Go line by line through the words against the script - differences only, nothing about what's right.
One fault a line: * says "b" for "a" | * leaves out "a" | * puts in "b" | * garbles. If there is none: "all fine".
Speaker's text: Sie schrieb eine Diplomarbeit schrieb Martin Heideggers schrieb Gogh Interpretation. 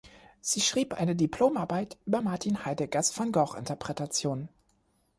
* says "über" for "schrieb"
* says "van" for "schrieb"